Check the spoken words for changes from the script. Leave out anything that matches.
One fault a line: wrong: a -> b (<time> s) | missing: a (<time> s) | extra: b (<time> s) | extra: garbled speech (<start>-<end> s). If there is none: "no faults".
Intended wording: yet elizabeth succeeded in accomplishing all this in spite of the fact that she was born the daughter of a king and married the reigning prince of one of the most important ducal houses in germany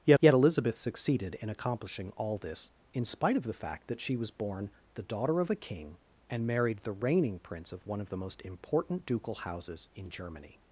extra: yet (0.2 s)